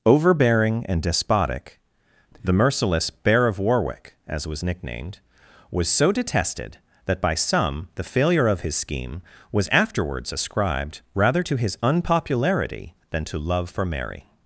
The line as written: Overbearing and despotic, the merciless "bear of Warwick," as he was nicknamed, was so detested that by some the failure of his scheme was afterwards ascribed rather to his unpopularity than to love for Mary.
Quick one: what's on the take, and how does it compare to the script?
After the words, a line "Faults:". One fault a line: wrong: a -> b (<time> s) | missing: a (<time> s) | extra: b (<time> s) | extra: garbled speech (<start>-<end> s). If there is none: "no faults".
Overbearing and despotic, the merciless "bear of Warwick," as was nicknamed, was so detested that by some the failure of his scheme was afterwards ascribed rather to his unpopularity than to love for Mary.
Faults:
missing: he (4.5 s)